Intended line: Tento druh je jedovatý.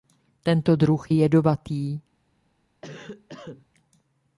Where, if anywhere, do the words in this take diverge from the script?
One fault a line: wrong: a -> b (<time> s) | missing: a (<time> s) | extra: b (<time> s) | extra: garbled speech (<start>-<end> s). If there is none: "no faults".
missing: je (1.1 s)